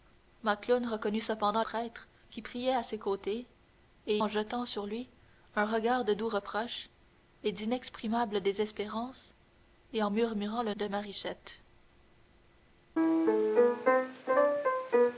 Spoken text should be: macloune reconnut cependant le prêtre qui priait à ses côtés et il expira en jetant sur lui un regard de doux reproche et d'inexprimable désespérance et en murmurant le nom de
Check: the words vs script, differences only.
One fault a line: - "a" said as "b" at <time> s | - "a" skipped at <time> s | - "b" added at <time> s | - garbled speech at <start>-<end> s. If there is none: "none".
- "le" skipped at 1.6 s
- "il expira" skipped at 4.2 s
- "nom" skipped at 10.7 s